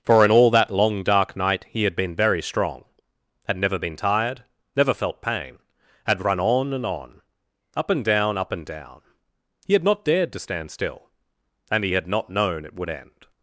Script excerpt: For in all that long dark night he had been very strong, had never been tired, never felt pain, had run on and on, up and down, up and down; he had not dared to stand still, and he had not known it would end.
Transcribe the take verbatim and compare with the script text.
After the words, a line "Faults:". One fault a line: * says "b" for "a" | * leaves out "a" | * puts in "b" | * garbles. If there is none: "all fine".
For in all that long dark night he had been very strong, had never been tired, never felt pain, had run on and on, up and down, up and down; he had not dared to stand still, and he had not known it would end.
Faults:
all fine